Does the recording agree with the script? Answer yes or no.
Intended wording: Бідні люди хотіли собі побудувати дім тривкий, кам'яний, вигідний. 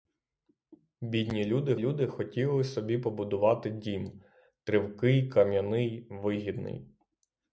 no